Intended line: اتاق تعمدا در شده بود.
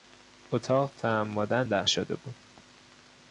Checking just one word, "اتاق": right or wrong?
right